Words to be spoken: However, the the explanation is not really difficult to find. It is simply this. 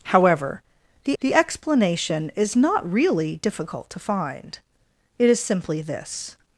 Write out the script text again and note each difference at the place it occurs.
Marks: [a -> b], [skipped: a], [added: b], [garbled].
However, the the explanation is not really difficult to find. It is simply this.